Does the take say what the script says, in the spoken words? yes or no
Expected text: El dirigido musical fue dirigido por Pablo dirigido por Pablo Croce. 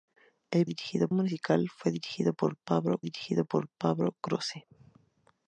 yes